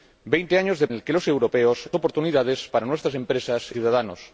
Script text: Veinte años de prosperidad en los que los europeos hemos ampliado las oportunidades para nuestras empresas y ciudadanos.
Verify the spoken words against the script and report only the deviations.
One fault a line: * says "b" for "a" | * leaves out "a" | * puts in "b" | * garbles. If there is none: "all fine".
* leaves out "prosperidad en"
* leaves out "hemos ampliado las"
* leaves out "y"